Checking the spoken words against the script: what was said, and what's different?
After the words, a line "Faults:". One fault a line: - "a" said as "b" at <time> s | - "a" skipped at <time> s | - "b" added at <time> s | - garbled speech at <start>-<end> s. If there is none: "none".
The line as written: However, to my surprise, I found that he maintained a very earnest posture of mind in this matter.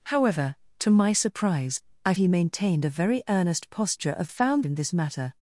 However, to my surprise, I he maintained a very earnest posture of found in this matter.
Faults:
- "found that" skipped at 2.1 s
- "mind" said as "found" at 4.3 s